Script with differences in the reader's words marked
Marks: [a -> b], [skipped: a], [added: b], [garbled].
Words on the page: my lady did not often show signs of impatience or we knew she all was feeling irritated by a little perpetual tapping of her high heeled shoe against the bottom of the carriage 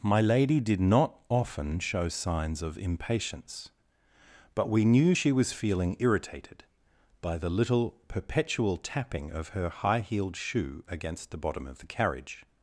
my lady did not often show signs of impatience [or -> but] we knew she [skipped: all] was feeling irritated by [a -> the] little perpetual tapping of her high heeled shoe against the bottom of the carriage